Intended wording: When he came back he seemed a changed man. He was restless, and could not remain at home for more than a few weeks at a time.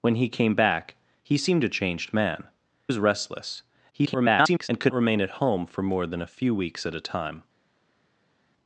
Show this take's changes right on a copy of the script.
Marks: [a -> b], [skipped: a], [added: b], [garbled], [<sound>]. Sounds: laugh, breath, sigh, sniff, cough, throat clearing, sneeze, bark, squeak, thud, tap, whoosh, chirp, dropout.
When he came back he seemed a changed man. [skipped: He] was restless, [garbled] and could [skipped: not] remain at home for more than a few weeks at a time.